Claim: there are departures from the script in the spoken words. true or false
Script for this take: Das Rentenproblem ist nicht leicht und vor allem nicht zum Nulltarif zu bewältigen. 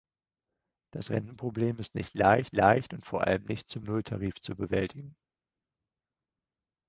true